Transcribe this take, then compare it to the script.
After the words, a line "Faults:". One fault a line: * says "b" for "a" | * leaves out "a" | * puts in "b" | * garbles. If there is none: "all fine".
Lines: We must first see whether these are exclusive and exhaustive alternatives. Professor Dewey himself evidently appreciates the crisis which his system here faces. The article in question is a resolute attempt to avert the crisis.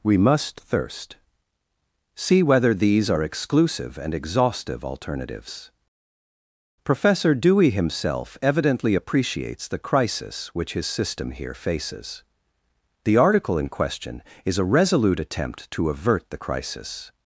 We must thirst see whether these are exclusive and exhaustive alternatives. Professor Dewey himself evidently appreciates the crisis which his system here faces. The article in question is a resolute attempt to avert the crisis.
Faults:
* says "thirst" for "first"